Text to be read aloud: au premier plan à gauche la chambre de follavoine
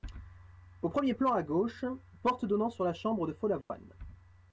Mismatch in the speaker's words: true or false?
true